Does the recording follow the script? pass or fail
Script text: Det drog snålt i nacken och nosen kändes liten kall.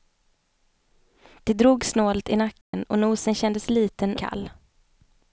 pass